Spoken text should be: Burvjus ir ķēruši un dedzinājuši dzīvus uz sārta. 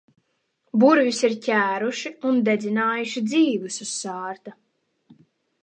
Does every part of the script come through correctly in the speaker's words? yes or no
yes